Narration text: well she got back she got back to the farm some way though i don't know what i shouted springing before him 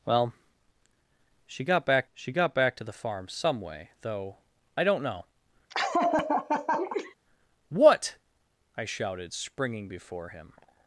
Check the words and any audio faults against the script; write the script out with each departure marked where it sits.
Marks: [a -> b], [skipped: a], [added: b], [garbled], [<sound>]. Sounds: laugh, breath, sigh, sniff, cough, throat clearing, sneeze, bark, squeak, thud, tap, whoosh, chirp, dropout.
well she got back she got back to the farm some way though i don't know [laugh] what i shouted springing before him